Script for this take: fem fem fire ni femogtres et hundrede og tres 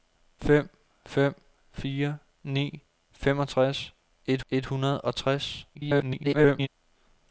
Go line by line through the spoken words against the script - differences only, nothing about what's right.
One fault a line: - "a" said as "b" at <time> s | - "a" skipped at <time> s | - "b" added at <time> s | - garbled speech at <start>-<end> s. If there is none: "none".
- "et" added at 4.5 s
- garbled speech at 5.7-6.7 s